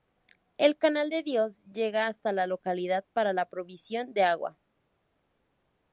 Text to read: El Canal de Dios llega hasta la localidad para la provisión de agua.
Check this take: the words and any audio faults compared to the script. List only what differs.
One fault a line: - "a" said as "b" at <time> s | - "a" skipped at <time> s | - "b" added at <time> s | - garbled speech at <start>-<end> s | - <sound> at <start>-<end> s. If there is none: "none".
none